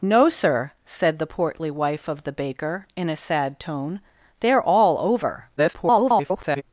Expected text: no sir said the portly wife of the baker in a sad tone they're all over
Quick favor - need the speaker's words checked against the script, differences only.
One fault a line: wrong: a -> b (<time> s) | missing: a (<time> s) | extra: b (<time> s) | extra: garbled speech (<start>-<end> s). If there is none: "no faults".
extra: garbled speech (5.6-6.6 s)